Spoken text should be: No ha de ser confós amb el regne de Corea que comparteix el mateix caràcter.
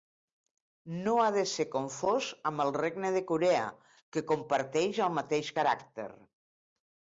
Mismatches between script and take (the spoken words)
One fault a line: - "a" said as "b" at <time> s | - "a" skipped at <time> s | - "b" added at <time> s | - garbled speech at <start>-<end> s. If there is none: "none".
none